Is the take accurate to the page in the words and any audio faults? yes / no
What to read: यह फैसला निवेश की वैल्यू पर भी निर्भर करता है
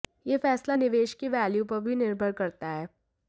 yes